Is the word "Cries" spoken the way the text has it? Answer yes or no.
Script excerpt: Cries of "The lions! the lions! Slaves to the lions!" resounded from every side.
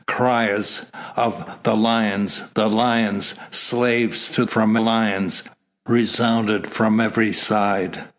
yes